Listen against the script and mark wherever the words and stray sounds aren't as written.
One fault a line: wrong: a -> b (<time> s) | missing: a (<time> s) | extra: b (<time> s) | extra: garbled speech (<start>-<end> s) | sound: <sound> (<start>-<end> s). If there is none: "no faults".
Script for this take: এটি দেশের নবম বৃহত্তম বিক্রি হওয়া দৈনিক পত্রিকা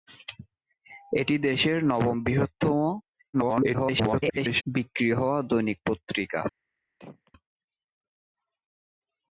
extra: garbled speech (3.3-4.6 s)
sound: throat clearing (7.0-7.3 s)